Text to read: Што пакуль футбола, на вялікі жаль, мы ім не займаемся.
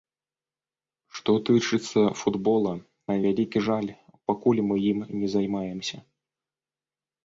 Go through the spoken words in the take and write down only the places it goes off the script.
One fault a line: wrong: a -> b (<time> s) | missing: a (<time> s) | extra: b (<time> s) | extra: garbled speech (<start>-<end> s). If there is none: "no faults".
wrong: пакуль -> тычыцца (1.5 s)
extra: пакуль (4.3 s)